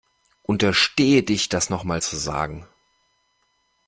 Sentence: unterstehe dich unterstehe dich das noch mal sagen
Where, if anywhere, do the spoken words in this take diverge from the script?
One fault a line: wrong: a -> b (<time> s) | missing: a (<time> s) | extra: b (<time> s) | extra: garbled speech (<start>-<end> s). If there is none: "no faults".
missing: unterstehe dich (1.5 s)
extra: zu (2.0 s)